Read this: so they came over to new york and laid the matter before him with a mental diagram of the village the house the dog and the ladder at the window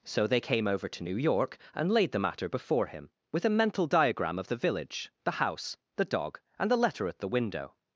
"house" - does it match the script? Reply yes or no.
yes